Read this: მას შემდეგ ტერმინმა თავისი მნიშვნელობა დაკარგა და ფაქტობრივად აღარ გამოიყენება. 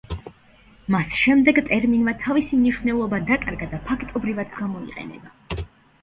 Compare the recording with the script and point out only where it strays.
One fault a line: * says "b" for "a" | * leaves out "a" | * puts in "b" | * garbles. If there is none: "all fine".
* leaves out "აღარ"